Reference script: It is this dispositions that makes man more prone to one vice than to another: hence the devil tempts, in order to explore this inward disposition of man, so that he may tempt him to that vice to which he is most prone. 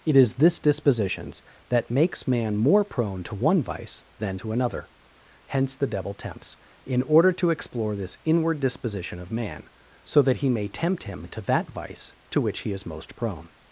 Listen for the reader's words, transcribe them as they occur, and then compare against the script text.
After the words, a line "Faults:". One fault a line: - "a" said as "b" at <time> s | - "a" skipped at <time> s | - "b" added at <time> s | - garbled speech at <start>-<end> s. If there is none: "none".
It is this dispositions that makes man more prone to one vice than to another: hence the devil tempts, in order to explore this inward disposition of man, so that he may tempt him to that vice to which he is most prone.
Faults:
none